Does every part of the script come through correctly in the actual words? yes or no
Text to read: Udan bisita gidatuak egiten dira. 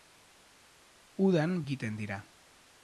no